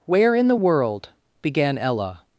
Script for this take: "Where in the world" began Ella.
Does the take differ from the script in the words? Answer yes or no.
no